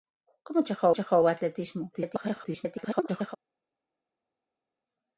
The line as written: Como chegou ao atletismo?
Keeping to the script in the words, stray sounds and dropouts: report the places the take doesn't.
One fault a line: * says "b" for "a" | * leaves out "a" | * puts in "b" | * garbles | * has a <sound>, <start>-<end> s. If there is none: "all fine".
* puts in "chegou"
* garbles